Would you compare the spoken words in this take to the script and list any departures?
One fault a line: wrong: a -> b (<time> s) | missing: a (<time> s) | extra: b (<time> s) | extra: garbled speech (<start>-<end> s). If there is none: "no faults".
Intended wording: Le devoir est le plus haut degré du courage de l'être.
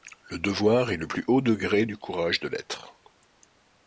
no faults